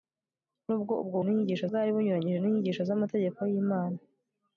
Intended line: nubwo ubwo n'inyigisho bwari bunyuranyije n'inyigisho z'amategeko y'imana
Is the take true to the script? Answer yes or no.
yes